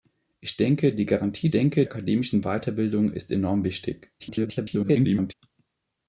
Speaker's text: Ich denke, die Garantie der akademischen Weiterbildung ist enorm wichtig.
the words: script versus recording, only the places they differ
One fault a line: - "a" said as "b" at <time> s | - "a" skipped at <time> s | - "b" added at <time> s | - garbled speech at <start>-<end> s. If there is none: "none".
- "der" said as "denke" at 1.5 s
- garbled speech at 4.2-5.3 s